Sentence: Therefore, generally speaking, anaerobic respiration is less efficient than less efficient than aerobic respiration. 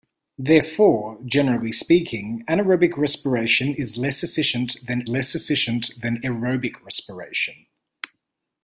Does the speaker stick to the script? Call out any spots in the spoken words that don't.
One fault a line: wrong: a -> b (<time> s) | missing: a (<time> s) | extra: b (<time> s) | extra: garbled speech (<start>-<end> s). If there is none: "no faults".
no faults